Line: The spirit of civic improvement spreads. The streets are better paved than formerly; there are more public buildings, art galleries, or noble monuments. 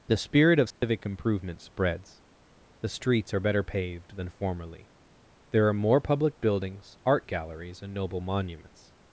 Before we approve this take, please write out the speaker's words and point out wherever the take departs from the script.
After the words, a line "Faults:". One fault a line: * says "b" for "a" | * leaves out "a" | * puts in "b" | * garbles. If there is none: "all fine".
The spirit of civic improvement spreads. The streets are better paved than formerly; there are more public buildings, art galleries, and noble monuments.
Faults:
* says "and" for "or"